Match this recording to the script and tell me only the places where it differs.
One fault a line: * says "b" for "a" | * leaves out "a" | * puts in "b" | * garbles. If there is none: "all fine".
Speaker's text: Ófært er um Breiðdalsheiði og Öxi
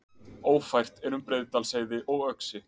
all fine